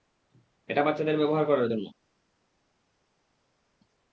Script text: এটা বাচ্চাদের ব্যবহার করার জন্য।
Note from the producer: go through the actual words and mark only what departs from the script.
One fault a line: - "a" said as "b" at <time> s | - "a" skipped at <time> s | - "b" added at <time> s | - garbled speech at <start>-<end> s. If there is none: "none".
none